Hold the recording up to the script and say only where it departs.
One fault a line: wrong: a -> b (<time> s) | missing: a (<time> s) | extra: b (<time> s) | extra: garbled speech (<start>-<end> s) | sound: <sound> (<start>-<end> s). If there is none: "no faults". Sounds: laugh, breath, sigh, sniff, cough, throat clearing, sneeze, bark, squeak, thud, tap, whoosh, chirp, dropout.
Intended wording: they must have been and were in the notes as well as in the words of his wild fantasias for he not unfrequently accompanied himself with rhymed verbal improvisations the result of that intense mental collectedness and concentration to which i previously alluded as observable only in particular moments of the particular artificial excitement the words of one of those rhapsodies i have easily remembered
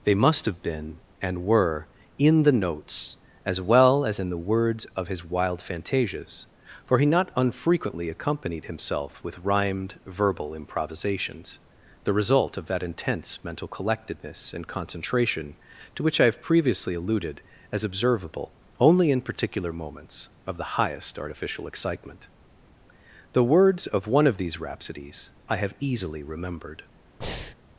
extra: have (16.2 s)
wrong: particular -> highest (20.8 s)
wrong: those -> these (24.4 s)
sound: breath (27.2-27.6 s)